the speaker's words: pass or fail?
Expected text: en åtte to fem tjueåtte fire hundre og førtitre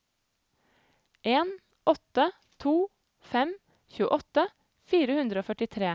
pass